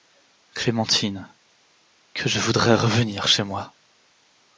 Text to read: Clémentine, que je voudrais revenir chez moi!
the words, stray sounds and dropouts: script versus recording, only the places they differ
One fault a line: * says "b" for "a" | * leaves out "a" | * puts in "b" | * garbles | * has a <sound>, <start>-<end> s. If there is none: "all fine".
all fine